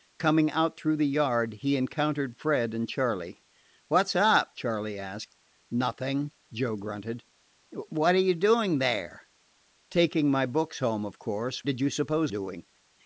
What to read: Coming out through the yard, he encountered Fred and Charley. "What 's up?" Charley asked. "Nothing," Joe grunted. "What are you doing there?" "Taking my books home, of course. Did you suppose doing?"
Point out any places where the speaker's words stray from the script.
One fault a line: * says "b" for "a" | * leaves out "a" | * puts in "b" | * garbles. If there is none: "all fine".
all fine